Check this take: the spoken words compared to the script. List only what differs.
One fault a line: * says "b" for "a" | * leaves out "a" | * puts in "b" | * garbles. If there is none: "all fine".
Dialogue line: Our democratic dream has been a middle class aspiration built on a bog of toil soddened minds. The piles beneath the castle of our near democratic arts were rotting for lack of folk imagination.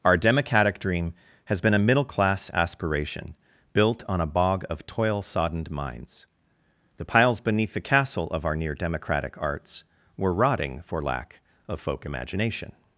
all fine